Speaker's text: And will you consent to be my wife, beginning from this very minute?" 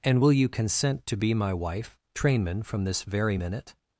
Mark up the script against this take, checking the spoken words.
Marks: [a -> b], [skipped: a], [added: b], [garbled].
And will you consent to be my wife, [beginning -> trainman] from this very minute?"